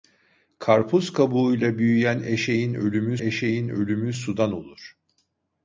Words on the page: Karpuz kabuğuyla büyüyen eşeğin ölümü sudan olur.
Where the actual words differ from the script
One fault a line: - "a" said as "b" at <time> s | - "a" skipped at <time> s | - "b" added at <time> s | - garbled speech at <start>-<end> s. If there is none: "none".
- "eşeğin ölümü" added at 3.2 s